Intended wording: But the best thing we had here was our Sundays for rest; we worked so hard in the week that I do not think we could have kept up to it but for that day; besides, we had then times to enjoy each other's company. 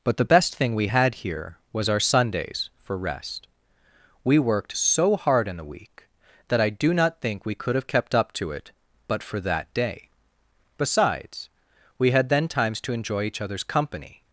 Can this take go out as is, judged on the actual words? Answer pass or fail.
pass